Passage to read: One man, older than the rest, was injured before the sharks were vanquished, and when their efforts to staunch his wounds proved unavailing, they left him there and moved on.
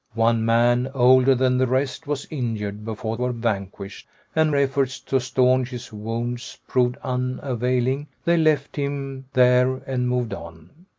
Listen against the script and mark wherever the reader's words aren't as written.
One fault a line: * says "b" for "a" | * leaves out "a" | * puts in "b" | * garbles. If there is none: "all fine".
* leaves out "the sharks"
* leaves out "when their"